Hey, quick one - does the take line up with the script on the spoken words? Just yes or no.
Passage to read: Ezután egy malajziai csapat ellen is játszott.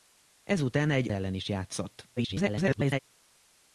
no